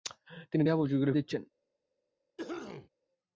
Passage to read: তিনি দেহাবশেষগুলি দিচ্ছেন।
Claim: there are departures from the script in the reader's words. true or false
false